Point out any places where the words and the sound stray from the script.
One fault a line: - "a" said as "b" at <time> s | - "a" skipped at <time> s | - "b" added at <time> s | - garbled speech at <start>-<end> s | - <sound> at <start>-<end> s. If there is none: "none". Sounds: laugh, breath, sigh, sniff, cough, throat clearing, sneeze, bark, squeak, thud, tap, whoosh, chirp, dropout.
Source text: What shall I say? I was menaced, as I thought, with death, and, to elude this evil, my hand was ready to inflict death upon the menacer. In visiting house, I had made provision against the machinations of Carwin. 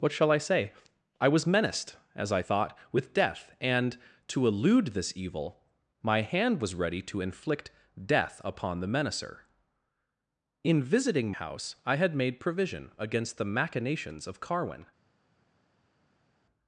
none